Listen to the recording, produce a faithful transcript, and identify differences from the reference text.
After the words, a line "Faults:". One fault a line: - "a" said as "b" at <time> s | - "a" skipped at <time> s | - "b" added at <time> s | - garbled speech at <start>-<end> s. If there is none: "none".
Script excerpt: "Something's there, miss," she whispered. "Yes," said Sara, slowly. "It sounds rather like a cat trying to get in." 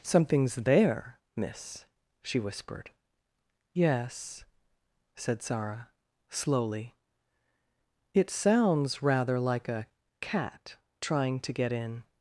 "Something's there, miss," she whispered. "Yes," said Sara, slowly. "It sounds rather like a cat trying to get in."
Faults:
none